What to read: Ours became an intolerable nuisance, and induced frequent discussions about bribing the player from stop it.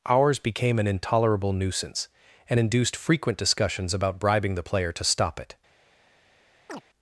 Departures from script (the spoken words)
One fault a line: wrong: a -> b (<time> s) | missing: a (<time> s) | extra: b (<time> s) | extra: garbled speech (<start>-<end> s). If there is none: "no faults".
wrong: from -> to (4.9 s)